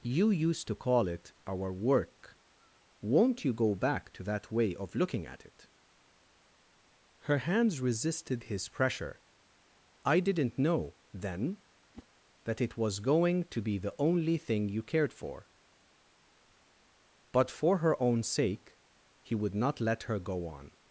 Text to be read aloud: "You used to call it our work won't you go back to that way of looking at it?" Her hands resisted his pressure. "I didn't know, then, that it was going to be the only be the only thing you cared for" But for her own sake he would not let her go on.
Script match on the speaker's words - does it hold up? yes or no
no